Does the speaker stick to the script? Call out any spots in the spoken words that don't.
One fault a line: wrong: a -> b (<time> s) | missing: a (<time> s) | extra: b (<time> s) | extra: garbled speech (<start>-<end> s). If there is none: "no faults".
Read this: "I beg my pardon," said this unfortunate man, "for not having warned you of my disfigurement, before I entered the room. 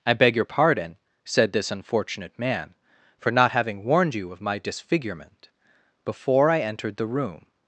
wrong: my -> your (0.3 s)